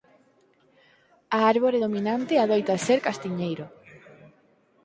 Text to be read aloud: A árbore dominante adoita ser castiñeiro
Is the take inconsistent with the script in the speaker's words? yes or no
no